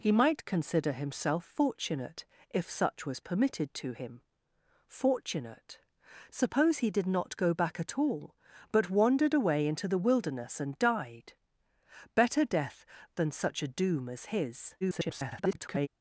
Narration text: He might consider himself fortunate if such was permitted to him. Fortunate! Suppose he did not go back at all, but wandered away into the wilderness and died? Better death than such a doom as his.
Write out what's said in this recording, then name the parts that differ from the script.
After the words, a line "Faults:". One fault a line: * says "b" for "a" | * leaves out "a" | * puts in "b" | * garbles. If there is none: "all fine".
He might consider himself fortunate if such was permitted to him. Fortunate! Suppose he did not go back at all, but wandered away into the wilderness and died? Better death than such a doom as his. [garbled]
Faults:
* garbles